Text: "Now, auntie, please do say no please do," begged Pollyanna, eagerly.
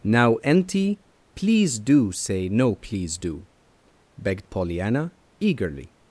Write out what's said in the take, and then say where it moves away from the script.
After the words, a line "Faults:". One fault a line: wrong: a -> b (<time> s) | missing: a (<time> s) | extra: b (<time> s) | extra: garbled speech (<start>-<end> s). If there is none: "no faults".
"Now, auntie, please do say no please do," begged Pollyanna, eagerly.
Faults:
no faults